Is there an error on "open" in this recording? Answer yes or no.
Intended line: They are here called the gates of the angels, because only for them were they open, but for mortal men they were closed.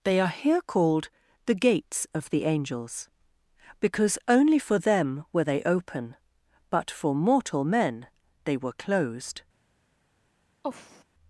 no